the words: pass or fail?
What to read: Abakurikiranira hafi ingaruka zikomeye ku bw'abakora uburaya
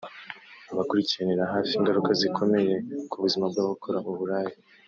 fail